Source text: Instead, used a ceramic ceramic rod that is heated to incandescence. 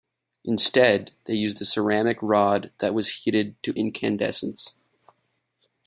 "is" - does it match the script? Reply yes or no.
no